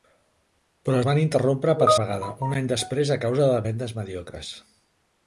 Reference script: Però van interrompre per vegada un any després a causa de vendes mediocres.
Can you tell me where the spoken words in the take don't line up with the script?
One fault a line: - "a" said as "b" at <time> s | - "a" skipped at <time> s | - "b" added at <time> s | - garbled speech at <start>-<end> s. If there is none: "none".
none